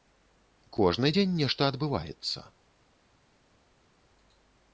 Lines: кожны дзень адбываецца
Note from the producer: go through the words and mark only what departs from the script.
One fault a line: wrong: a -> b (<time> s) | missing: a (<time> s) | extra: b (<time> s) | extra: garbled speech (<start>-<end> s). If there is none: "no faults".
extra: нешта (1.4 s)